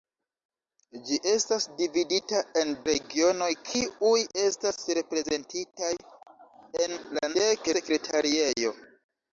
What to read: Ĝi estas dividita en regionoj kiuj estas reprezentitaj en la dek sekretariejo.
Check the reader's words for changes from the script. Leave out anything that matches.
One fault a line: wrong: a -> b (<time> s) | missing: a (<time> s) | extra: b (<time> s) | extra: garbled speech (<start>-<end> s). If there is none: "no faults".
no faults